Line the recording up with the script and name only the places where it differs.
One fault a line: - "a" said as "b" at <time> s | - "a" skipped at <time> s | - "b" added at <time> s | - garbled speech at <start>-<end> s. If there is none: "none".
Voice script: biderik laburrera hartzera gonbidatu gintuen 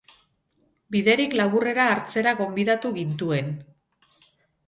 none